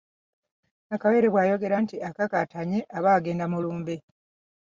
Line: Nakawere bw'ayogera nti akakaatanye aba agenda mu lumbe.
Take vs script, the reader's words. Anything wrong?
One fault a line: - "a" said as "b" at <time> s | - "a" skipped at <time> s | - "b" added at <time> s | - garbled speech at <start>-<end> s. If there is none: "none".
none